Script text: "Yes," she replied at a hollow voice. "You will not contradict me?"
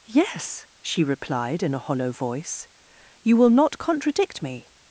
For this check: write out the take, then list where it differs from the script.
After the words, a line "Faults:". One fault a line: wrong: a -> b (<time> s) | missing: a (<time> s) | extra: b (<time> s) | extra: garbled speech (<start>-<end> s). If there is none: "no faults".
"Yes," she replied in a hollow voice. "You will not contradict me?"
Faults:
wrong: at -> in (1.6 s)